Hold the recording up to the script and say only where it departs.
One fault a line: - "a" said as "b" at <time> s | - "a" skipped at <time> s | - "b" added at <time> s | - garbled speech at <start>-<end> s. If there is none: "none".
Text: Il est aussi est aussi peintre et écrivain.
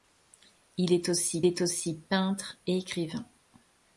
none